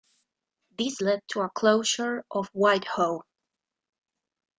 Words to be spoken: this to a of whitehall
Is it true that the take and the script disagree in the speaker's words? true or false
true